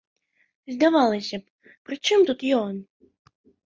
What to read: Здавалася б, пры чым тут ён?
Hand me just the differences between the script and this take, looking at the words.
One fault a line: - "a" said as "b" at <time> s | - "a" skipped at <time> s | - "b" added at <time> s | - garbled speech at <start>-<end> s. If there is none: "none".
none